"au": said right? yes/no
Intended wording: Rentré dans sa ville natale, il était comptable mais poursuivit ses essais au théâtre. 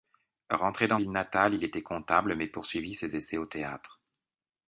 yes